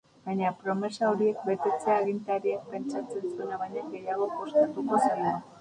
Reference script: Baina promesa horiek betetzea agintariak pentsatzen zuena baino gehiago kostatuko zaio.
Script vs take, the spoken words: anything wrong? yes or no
no